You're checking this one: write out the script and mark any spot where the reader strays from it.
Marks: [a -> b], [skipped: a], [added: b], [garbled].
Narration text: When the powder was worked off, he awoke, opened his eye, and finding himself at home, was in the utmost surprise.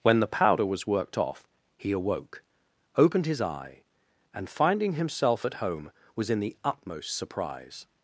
When the powder was worked off, he awoke, opened his eye, and finding himself at home, was in the utmost surprise.